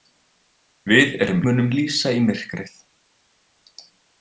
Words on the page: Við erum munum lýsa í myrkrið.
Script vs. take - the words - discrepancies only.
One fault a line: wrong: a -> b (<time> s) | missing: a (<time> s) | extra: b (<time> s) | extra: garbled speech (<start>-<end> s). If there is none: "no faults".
no faults